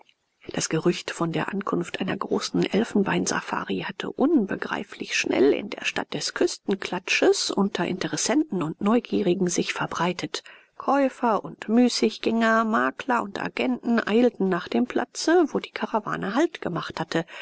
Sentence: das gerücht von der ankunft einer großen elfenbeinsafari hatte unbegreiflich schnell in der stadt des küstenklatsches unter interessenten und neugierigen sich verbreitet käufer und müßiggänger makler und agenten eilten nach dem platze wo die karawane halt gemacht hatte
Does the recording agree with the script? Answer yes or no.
yes